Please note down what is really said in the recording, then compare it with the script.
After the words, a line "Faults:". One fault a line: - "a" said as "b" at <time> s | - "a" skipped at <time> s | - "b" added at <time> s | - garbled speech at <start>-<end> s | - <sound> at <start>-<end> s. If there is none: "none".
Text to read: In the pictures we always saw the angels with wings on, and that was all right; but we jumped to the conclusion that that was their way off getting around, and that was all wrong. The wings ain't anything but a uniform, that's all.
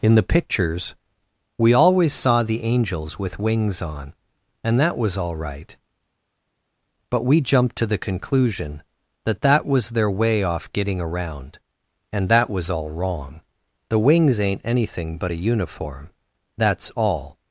In the pictures we always saw the angels with wings on, and that was all right; but we jumped to the conclusion that that was their way off getting around, and that was all wrong. The wings ain't anything but a uniform, that's all.
Faults:
none